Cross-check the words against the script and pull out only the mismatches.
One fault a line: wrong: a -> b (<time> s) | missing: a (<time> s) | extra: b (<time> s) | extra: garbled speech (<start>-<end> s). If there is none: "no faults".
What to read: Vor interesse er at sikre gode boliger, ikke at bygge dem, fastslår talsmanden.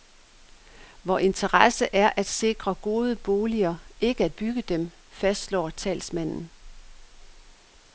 no faults